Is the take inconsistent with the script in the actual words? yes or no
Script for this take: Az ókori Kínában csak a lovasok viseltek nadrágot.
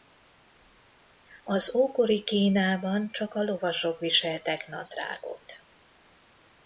no